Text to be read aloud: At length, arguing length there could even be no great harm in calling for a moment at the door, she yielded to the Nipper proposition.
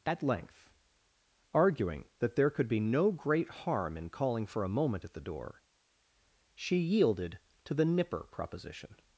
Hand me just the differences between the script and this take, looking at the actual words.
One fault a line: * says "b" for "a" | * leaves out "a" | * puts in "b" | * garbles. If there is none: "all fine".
* says "that" for "length"
* leaves out "even"